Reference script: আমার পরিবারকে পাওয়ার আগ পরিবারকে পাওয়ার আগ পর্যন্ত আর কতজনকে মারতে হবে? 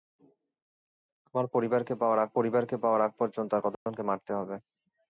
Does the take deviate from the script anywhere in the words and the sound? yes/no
yes